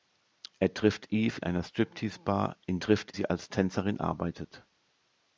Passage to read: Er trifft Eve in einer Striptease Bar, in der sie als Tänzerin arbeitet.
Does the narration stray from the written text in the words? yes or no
yes